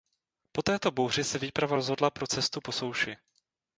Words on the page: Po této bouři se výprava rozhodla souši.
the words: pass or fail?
fail